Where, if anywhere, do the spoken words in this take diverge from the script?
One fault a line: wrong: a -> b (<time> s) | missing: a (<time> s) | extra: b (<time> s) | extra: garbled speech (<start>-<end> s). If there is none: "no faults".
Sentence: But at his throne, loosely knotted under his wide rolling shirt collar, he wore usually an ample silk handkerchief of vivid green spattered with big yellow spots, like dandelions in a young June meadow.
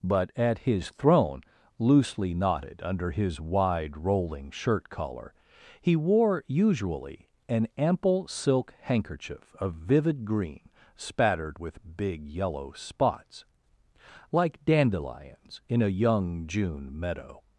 no faults